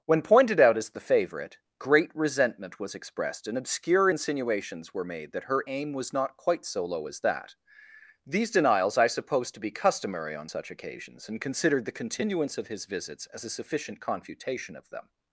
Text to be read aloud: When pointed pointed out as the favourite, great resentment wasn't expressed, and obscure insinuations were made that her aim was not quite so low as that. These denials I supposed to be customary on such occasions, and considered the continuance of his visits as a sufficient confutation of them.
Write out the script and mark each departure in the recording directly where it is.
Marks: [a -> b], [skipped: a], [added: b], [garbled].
When pointed [skipped: pointed] out as the favourite, great resentment [wasn't -> was] expressed, and obscure insinuations were made that her aim was not quite so low as that. These denials I supposed to be customary on such occasions, and considered the continuance of his visits as a sufficient confutation of them.